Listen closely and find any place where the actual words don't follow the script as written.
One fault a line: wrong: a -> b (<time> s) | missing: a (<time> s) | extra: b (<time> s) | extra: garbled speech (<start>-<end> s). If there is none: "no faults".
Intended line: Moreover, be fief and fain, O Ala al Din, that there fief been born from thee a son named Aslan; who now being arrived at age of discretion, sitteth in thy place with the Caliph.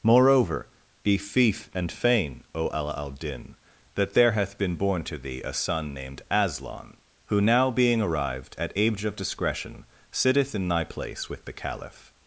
wrong: fief -> hath (4.3 s)
wrong: from -> to (5.0 s)